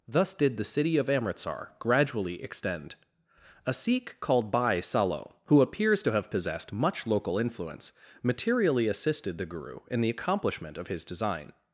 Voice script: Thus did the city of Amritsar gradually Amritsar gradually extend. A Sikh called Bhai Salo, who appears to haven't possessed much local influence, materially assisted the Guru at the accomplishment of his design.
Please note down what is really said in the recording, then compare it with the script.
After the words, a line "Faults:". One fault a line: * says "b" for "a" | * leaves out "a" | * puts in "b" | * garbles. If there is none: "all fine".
Thus did the city of Amritsar gradually extend. A Sikh called Bhai Salo, who appears to have possessed much local influence, materially assisted the Guru in the accomplishment of his design.
Faults:
* leaves out "Amritsar gradually"
* says "have" for "haven't"
* says "in" for "at"